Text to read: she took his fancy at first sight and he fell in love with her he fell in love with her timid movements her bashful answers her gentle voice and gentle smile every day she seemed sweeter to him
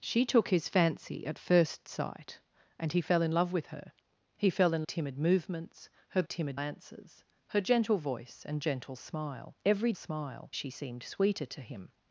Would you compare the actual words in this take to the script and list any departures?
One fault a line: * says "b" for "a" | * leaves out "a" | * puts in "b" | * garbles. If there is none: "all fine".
* leaves out "love with her"
* says "timid" for "bashful"
* says "smile" for "day"